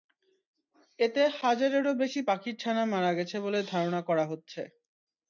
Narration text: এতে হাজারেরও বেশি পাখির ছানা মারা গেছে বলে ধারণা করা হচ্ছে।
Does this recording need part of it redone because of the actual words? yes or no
no